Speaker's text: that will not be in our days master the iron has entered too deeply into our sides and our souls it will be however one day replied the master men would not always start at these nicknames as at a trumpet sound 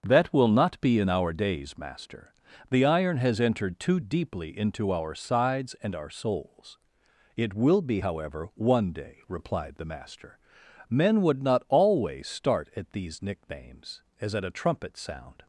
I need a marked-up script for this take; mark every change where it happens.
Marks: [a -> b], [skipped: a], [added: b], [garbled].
that will not be in our days master the iron has entered too deeply into our sides and our souls it will be however one day replied the master men would not always start at these nicknames as at a trumpet sound